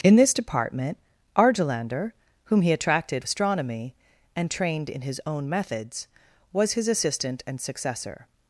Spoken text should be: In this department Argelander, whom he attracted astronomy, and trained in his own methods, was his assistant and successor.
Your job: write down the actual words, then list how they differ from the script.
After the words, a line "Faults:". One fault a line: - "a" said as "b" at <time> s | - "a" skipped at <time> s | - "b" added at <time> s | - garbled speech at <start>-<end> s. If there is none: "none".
In this department Argelander, whom he attracted astronomy, and trained in his own methods, was his assistant and successor.
Faults:
none